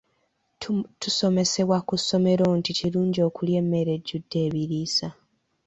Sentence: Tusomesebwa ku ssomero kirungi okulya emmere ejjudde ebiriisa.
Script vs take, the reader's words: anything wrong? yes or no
yes